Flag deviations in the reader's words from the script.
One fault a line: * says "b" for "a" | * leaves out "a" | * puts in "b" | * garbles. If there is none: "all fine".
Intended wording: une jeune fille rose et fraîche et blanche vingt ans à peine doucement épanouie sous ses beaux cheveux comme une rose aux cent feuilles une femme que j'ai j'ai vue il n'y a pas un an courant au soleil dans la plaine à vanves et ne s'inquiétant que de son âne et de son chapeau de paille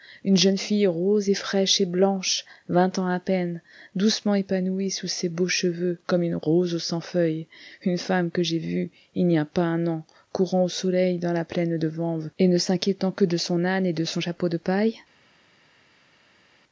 * leaves out "j'ai"
* says "de" for "à"